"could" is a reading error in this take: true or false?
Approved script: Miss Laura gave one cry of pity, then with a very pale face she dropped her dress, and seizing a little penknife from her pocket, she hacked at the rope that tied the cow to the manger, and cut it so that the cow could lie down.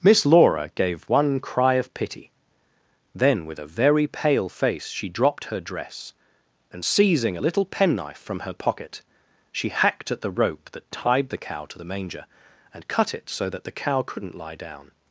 true